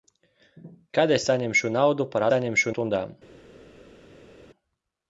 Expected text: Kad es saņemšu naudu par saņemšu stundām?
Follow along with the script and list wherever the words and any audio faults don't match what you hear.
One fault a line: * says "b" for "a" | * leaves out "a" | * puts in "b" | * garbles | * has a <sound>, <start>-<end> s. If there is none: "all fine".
all fine